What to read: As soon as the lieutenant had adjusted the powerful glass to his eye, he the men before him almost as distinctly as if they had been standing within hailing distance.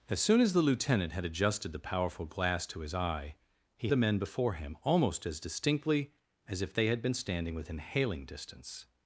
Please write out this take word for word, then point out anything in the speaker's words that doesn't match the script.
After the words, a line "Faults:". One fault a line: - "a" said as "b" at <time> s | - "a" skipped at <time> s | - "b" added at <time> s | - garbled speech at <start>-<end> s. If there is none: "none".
As soon as the lieutenant had adjusted the powerful glass to his eye, he the men before him almost as distinctly as if they had been standing within hailing distance.
Faults:
none